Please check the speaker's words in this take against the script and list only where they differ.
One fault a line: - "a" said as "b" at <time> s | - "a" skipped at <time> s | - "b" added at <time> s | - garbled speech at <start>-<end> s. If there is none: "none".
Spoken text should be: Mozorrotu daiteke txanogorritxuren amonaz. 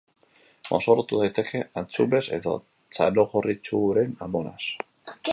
- "antxumez edo" added at 1.8 s